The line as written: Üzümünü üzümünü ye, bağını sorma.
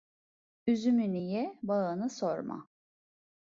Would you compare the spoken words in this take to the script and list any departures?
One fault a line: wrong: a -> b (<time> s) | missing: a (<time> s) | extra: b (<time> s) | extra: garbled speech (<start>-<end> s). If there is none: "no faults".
missing: üzümünü (1.2 s)